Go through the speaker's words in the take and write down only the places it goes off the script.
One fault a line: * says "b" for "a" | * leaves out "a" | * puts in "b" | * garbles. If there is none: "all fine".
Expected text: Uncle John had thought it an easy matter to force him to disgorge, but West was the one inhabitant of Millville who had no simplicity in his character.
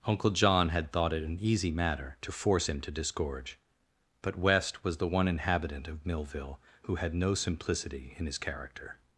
all fine